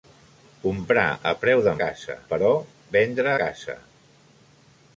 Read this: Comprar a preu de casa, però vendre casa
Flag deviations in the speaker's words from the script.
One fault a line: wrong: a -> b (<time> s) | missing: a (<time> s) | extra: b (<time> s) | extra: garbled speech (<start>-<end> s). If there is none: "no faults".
no faults